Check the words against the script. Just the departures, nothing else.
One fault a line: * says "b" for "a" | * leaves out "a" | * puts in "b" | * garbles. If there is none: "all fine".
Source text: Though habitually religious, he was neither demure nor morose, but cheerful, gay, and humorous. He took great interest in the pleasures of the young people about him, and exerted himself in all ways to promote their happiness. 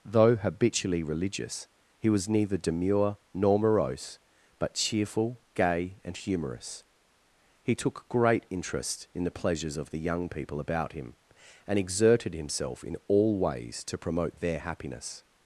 all fine